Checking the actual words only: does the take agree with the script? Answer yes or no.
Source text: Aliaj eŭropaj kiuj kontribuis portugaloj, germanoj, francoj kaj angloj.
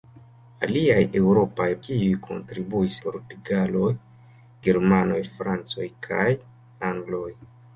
yes